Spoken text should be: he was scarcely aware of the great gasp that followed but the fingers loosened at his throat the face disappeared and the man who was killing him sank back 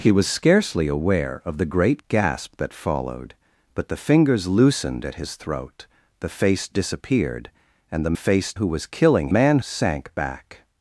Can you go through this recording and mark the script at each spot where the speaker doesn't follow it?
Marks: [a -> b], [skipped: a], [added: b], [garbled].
he was scarcely aware of the great gasp that followed but the fingers loosened at his throat the face disappeared and the [man -> face] who was killing [him -> man] sank back